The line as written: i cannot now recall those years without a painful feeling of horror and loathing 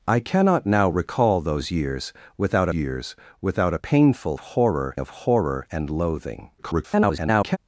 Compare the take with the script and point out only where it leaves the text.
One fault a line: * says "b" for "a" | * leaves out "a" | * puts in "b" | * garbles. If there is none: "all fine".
* puts in "years without"
* says "horror" for "feeling"
* garbles